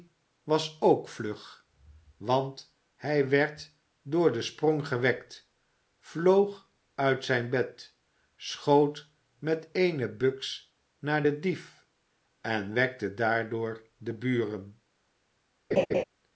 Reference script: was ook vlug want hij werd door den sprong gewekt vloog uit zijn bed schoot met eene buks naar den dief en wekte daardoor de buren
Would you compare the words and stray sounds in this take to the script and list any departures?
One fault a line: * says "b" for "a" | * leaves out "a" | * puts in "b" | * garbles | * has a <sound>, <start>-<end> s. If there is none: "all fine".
* has a laugh, 15.7-16.0 s